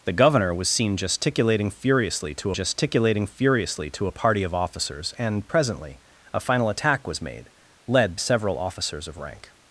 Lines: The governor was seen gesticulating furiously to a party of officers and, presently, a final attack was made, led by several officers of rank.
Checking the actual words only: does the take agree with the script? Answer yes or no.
no